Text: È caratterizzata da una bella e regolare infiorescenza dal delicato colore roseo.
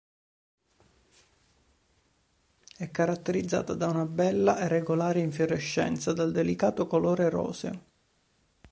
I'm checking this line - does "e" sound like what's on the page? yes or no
yes